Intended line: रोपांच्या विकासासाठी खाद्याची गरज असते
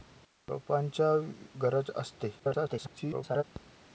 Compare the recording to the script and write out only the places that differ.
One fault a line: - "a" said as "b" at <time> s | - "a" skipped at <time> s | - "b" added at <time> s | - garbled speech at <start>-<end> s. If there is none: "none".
- "विकासासाठी खाद्याची" skipped at 1.1 s
- garbled speech at 2.4-3.4 s